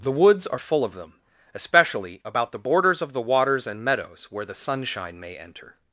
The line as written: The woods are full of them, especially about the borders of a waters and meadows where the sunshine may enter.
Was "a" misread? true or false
true